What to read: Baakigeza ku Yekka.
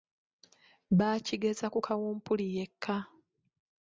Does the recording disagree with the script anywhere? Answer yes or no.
yes